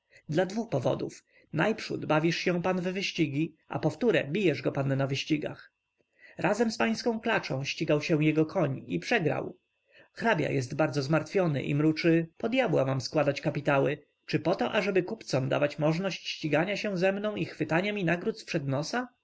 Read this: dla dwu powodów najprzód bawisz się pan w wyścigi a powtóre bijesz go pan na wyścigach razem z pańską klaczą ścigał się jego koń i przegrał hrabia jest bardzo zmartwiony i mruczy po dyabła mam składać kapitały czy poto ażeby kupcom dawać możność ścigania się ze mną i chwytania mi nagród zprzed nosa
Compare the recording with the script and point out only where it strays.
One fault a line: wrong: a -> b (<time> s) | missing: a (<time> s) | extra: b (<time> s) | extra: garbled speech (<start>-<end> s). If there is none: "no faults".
no faults